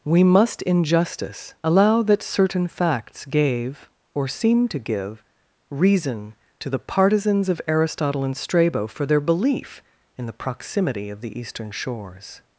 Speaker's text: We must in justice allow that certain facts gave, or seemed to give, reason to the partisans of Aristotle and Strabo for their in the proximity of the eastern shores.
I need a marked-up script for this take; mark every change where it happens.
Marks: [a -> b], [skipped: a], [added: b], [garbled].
We must in justice allow that certain facts gave, or seemed to give, reason to the partisans of Aristotle and Strabo for their [added: belief] in the proximity of the eastern shores.